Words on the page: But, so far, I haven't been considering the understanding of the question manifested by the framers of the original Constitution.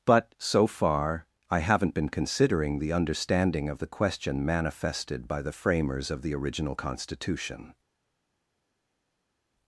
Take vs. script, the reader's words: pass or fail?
pass